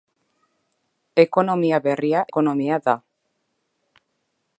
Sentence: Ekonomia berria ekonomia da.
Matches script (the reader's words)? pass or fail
pass